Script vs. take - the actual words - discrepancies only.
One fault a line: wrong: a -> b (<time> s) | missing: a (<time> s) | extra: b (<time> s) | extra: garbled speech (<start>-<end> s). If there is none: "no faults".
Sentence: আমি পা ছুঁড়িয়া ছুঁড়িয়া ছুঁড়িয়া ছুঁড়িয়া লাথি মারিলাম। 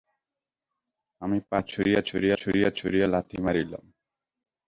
no faults